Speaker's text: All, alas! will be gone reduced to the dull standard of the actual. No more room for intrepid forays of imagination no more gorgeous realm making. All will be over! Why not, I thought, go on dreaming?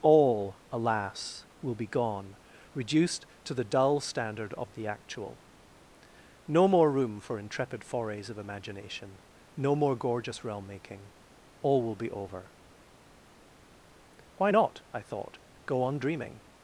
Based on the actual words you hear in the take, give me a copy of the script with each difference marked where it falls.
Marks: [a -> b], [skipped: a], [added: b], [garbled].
All, alas! will be gone reduced to the dull standard of the actual. No more room for intrepid forays of imagination no more gorgeous realm making. All will be over! Why not, I thought, go on dreaming?